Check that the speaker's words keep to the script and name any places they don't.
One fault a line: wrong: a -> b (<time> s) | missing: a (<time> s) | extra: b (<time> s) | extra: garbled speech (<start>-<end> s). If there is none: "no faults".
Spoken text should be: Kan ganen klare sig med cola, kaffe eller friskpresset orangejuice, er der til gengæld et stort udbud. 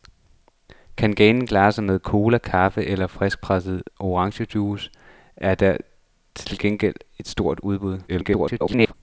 extra: garbled speech (8.1-8.9 s)